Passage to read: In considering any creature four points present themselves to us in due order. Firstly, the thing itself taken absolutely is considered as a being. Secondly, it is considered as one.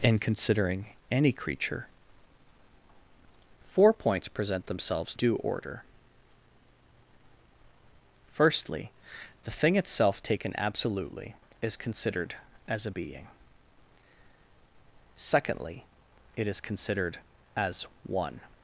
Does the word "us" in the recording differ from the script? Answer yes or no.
yes